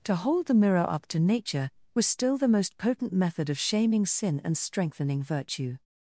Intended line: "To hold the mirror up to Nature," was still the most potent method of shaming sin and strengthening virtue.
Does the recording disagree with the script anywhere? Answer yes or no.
no